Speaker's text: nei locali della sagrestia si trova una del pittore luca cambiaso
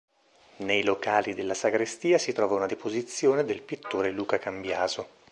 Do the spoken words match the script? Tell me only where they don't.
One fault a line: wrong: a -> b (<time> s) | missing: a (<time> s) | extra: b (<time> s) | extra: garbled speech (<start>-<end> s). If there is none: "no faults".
extra: deposizione (2.6 s)